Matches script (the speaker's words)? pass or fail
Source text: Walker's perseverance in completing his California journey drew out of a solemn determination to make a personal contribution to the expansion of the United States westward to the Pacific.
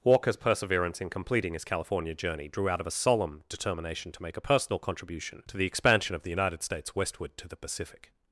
pass